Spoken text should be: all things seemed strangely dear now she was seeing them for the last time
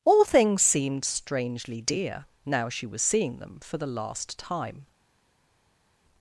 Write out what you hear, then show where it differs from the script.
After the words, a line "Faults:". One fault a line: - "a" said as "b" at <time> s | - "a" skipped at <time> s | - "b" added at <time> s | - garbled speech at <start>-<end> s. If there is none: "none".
all things seemed strangely dear now she was seeing them for the last time
Faults:
none